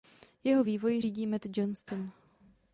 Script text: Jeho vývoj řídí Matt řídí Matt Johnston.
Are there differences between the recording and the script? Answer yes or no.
yes